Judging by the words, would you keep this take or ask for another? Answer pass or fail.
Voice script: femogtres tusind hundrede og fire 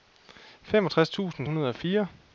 pass